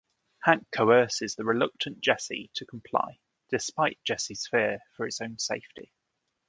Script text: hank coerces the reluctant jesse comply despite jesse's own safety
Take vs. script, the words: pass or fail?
fail